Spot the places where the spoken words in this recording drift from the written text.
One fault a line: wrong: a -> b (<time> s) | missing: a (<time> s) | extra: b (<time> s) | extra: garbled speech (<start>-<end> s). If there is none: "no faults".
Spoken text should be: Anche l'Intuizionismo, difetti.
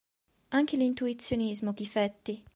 no faults